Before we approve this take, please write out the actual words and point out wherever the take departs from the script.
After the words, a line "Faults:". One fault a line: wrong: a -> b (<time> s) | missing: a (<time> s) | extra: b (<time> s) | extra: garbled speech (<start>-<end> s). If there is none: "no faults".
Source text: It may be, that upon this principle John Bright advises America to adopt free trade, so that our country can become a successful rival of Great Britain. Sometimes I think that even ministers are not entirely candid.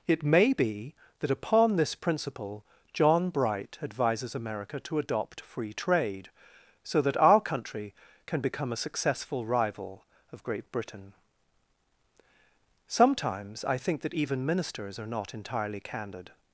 It may be, that upon this principle John Bright advises America to adopt free trade, so that our country can become a successful rival of Great Britain. Sometimes I think that even ministers are not entirely candid.
Faults:
no faults